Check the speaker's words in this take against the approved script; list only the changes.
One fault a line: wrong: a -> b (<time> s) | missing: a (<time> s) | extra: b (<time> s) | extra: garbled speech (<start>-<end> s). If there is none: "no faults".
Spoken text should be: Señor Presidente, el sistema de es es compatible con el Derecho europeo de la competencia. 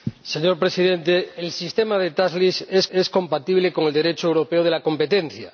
no faults